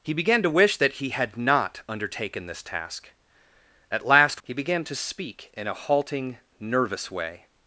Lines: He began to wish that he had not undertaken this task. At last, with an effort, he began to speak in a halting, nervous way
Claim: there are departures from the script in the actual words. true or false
true